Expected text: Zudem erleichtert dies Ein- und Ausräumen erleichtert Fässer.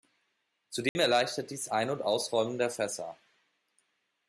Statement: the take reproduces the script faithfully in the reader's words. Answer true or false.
false